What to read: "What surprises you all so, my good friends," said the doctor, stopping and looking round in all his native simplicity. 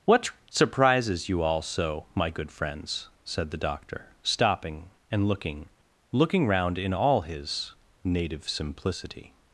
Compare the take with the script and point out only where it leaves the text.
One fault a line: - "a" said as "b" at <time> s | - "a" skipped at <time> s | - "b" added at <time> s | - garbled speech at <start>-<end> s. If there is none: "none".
- "looking" added at 6.1 s